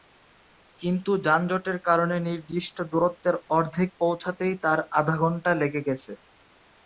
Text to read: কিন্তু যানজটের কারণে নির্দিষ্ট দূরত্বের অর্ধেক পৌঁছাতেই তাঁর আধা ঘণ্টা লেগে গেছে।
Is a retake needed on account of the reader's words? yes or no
no